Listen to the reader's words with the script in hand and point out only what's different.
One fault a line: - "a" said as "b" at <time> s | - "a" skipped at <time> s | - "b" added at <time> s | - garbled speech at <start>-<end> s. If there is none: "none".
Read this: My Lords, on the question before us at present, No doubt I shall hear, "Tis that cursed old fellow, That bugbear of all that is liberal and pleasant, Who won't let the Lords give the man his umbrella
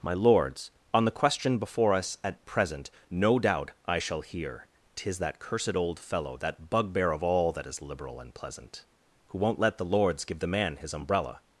none